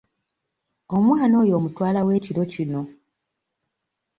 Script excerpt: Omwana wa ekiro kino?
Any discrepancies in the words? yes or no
yes